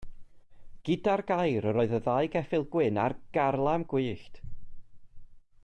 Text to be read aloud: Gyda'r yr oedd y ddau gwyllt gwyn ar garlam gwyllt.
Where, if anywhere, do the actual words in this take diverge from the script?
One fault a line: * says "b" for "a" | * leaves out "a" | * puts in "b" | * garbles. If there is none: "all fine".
* puts in "gair"
* says "geffyl" for "gwyllt"